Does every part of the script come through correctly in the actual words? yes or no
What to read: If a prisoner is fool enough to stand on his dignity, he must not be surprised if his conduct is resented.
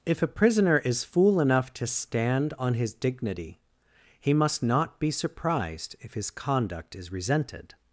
yes